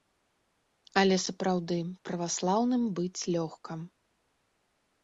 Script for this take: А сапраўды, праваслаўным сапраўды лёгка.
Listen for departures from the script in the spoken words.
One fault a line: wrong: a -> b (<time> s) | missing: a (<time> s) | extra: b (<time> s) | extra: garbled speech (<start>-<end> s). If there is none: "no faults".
wrong: А -> Але (1.0 s)
wrong: сапраўды -> быць (3.0 s)